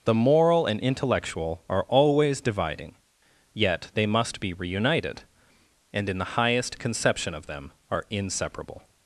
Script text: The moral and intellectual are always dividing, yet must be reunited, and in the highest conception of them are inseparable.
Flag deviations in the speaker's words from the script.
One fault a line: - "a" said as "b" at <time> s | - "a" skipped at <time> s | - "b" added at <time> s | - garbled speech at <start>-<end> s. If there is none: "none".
- "they" added at 3.9 s